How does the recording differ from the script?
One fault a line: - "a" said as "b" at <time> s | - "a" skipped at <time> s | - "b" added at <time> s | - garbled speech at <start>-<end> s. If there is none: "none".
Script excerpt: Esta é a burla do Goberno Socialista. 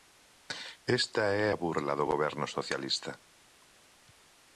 none